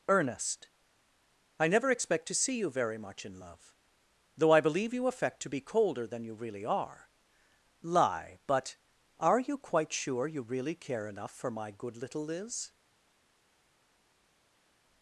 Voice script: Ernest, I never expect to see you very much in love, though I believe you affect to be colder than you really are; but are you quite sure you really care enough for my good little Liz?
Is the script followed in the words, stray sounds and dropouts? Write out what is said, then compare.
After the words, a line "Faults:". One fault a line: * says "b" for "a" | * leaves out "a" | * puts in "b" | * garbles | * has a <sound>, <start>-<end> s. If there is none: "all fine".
Ernest, I never expect to see you very much in love, though I believe you affect to be colder than you really are; lie but are you quite sure you really care enough for my good little Liz?
Faults:
* puts in "lie"